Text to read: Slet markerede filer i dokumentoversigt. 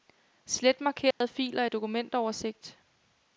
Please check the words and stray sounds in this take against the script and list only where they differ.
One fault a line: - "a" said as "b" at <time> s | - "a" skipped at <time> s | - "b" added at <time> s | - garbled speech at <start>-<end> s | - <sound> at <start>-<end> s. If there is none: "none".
- dropout at 1.1-1.2 s